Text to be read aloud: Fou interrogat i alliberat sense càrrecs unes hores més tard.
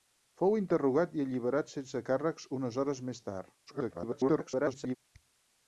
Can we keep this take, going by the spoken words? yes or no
no